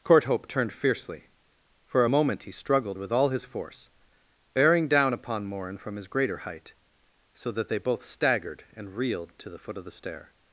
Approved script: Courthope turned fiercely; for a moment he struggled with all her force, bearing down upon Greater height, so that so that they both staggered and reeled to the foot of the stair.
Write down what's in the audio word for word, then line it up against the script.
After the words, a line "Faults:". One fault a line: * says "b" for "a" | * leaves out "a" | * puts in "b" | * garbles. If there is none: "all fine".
Courthope turned fiercely; for a moment he struggled with all his force, bearing down upon Morin from his greater height, so that they both staggered and reeled to the foot of the stair.
Faults:
* says "his" for "her"
* puts in "Morin from his"
* leaves out "so that"